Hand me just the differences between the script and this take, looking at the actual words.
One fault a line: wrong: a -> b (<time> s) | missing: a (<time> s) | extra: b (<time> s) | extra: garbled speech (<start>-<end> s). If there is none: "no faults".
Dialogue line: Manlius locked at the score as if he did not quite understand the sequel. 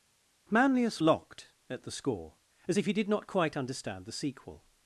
no faults